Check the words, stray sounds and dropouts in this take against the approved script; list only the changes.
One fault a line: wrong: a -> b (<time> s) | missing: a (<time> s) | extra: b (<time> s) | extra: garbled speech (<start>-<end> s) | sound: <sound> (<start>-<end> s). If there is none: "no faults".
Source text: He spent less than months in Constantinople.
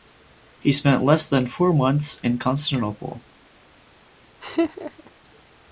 extra: four (1.4 s)
sound: laugh (4.4-5.1 s)